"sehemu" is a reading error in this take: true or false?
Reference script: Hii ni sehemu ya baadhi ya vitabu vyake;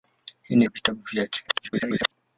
true